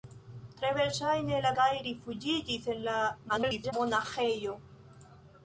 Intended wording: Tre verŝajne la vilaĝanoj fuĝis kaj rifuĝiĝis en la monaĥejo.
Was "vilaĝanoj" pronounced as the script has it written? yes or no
no